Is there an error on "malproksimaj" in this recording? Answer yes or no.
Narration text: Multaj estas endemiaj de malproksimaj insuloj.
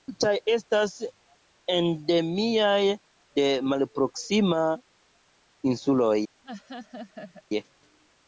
no